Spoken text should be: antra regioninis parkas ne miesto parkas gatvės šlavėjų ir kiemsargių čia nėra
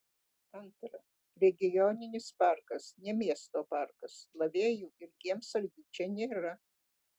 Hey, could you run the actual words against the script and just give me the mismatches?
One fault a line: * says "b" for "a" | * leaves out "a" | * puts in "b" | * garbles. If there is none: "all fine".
* leaves out "gatvės"